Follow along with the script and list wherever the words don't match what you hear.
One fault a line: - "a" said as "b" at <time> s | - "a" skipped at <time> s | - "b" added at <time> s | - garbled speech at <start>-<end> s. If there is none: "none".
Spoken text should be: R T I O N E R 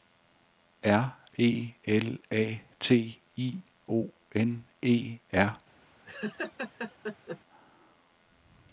- "E L A" added at 1.4 s